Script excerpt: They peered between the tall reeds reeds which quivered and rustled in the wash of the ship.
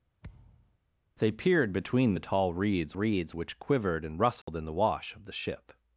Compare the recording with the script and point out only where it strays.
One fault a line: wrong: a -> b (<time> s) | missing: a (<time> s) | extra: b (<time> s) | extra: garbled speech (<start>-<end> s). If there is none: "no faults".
no faults